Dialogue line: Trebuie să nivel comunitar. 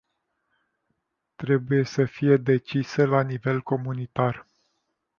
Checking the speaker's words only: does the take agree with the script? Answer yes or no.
no